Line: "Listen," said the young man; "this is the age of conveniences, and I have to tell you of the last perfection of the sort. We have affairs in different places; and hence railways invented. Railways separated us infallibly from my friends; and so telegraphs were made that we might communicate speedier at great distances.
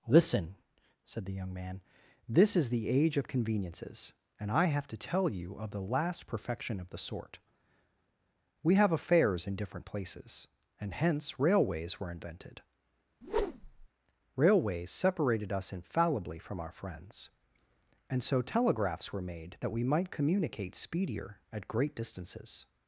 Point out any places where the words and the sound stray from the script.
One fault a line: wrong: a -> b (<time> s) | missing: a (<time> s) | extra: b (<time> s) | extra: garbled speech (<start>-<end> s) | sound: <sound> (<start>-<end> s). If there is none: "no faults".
extra: were (12.0 s)
sound: whoosh (13.2-13.9 s)
wrong: my -> our (16.6 s)